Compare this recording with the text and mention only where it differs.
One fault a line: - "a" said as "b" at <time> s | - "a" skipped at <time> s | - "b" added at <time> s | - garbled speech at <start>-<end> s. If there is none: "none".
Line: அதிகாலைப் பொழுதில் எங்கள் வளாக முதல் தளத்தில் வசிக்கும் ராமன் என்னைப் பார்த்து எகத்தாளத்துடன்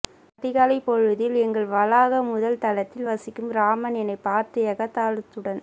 none